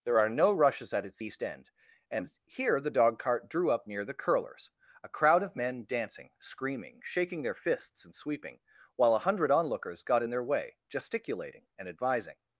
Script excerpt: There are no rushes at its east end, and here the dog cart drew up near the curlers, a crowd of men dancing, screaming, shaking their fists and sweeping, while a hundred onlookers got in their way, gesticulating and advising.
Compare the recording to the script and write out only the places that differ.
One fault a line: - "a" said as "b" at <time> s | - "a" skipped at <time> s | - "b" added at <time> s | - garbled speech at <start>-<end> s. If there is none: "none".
none